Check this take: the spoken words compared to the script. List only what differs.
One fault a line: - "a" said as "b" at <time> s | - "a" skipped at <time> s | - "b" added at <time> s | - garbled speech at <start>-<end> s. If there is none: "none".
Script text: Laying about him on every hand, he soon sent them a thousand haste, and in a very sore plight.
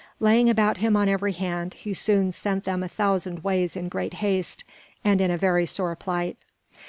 - "ways in great" added at 3.4 s